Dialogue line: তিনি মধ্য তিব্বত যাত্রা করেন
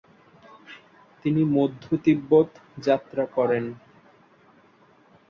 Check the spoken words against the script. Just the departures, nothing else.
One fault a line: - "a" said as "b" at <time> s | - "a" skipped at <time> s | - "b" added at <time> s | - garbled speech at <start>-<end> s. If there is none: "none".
none